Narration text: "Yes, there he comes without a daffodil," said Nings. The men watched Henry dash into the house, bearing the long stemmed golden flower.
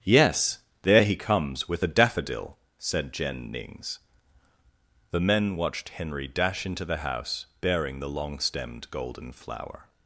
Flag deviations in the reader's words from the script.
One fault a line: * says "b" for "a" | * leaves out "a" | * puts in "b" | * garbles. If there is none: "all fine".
* says "with" for "without"
* puts in "Jen"